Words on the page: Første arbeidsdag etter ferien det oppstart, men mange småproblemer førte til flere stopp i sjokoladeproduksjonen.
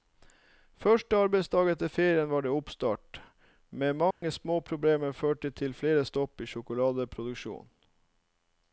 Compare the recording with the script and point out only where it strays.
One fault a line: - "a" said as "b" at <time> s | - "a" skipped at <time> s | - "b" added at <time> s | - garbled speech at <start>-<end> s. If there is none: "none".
- "var" added at 2.3 s